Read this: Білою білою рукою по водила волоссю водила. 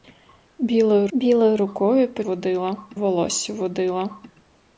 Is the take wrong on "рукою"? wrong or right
right